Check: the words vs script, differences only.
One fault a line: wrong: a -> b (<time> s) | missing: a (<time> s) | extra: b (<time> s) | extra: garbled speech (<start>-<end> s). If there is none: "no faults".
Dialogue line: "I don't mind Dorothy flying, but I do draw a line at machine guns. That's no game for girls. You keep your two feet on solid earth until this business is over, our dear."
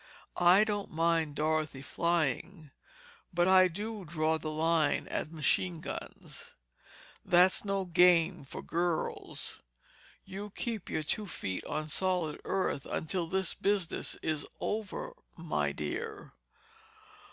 wrong: a -> the (4.4 s)
wrong: our -> my (15.4 s)